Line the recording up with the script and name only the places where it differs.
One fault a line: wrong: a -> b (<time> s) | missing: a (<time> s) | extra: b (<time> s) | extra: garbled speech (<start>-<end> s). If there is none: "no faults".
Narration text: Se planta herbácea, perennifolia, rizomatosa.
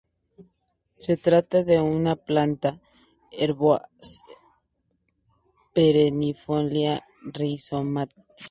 extra: trata de una (1.1 s)